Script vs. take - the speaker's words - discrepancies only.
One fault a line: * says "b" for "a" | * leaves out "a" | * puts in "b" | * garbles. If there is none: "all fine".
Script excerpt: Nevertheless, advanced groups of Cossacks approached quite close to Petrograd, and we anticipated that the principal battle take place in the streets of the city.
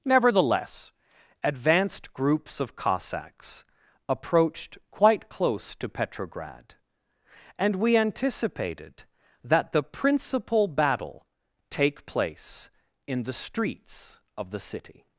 all fine